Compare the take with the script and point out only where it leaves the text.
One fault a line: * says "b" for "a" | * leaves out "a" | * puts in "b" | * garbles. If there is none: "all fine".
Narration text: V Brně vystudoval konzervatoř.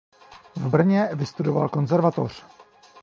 all fine